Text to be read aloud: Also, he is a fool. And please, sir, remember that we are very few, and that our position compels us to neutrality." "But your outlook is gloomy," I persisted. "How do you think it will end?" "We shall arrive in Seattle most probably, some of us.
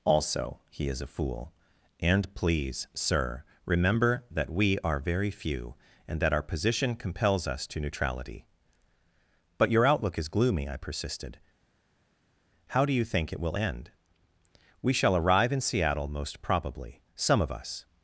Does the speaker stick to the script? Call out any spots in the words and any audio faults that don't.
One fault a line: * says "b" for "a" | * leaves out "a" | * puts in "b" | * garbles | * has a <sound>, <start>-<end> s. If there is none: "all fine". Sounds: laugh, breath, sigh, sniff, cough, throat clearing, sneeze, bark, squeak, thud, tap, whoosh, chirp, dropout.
all fine